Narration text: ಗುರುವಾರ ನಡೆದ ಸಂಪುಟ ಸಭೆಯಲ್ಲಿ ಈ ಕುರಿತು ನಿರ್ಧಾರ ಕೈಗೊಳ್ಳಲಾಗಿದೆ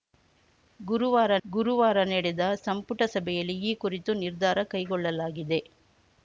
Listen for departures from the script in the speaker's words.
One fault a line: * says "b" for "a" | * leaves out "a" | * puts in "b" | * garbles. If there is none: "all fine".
* puts in "ಗುರುವಾರ"